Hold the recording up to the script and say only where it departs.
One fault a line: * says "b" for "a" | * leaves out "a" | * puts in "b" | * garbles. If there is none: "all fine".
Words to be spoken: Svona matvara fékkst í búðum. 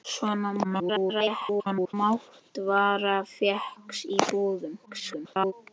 * garbles
* garbles